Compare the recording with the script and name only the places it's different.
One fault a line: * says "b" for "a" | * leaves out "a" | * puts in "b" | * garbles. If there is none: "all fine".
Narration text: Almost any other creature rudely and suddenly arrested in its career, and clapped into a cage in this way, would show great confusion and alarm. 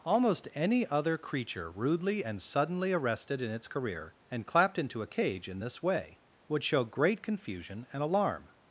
all fine